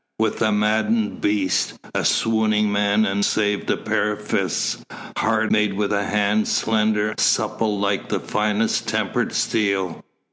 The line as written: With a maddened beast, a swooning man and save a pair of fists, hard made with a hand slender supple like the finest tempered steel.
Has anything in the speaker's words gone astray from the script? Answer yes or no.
no